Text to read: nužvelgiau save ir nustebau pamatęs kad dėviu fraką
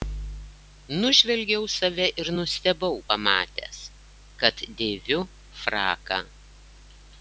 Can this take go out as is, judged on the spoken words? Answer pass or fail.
pass